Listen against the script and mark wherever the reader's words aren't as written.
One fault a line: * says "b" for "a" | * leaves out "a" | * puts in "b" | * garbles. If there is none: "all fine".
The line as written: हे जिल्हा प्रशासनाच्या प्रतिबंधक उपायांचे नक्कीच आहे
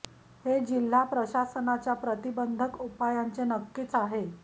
all fine